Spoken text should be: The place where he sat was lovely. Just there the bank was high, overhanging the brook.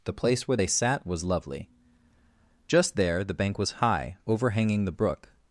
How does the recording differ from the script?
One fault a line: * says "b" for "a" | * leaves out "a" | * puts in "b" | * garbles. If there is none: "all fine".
* says "they" for "he"